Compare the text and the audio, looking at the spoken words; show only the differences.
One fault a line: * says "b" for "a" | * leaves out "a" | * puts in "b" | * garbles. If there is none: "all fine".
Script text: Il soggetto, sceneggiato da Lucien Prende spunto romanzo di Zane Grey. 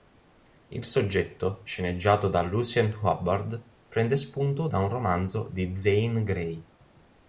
* puts in "Hubbard"
* puts in "da un"